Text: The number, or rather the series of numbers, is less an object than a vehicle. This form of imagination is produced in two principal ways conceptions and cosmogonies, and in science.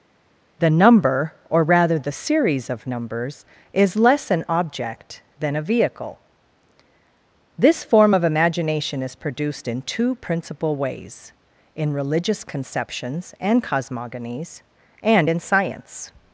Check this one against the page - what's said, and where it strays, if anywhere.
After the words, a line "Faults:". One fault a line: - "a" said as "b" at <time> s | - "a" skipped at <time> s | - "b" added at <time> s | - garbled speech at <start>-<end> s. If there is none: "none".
The number, or rather the series of numbers, is less an object than a vehicle. This form of imagination is produced in two principal ways in religious conceptions and cosmogonies, and in science.
Faults:
- "in religious" added at 11.8 s